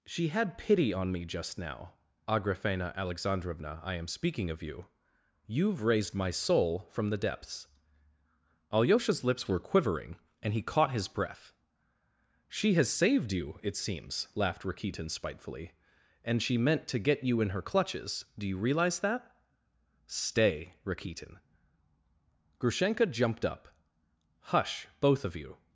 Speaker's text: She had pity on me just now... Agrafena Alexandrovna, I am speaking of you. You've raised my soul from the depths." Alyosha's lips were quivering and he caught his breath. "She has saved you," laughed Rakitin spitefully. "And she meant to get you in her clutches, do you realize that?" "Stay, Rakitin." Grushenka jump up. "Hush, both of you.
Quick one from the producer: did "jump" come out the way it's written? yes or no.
no